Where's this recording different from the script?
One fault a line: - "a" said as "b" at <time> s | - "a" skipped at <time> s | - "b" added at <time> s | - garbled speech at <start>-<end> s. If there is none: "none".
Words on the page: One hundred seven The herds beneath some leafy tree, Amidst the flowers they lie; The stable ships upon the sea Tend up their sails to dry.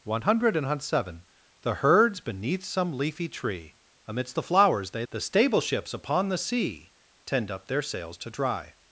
- "lie" skipped at 5.0 s